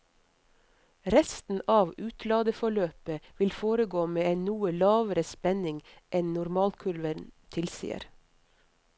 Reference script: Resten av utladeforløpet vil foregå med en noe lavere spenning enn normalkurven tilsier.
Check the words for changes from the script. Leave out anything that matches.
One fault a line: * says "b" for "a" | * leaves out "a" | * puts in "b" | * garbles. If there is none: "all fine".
all fine